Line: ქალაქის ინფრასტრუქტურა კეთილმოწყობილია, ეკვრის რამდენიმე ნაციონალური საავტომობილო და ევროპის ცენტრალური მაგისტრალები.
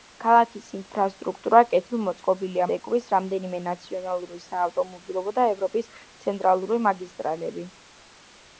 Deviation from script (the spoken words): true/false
false